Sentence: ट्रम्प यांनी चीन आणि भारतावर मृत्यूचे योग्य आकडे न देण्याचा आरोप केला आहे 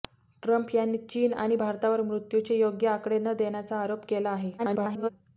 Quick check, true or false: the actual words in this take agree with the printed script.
false